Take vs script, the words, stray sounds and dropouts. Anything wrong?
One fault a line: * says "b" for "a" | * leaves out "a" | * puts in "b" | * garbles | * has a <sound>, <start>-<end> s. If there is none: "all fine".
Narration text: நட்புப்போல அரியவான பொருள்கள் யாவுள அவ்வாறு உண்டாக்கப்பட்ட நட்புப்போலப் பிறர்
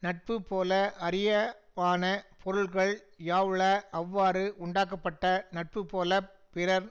all fine